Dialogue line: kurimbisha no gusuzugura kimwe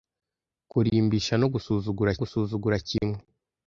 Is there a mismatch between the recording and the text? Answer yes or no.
yes